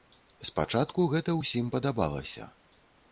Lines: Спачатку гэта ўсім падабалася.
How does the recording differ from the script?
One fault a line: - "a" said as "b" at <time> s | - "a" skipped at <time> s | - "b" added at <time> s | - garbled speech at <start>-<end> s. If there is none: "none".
none